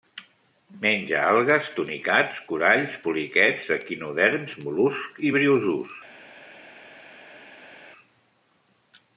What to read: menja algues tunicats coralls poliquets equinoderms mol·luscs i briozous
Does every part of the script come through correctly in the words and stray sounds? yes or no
yes